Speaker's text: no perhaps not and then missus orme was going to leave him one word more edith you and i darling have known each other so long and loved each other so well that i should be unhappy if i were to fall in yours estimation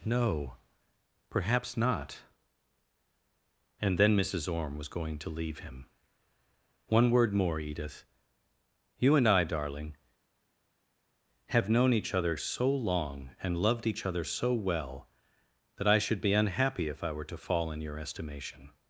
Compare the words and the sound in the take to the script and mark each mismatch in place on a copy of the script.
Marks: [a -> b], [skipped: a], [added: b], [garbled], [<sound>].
no perhaps not and then missus orme was going to leave him one word more edith you and i darling have known each other so long and loved each other so well that i should be unhappy if i were to fall in [yours -> your] estimation